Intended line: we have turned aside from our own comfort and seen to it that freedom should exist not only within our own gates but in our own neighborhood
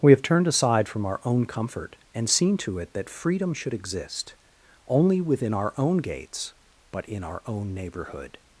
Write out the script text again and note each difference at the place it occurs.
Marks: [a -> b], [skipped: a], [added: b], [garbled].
we have turned aside from our own comfort and seen to it that freedom should exist [skipped: not] only within our own gates but in our own neighborhood